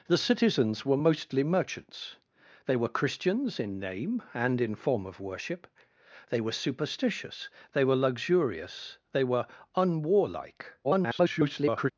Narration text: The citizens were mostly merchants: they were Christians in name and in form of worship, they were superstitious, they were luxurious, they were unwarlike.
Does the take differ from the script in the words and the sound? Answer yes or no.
yes